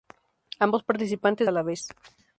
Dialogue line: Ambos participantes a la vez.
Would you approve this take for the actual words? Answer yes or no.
yes